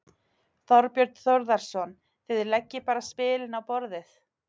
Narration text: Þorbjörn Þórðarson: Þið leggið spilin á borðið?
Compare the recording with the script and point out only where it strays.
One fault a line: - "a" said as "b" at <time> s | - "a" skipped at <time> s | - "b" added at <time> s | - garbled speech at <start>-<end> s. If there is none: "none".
- "bara" added at 2.9 s